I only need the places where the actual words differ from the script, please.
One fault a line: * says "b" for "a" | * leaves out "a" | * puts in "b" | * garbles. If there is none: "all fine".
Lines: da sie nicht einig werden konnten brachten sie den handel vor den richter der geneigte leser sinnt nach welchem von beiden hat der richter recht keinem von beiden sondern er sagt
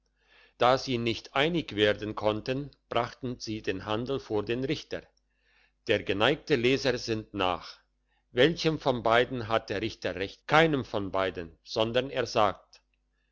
all fine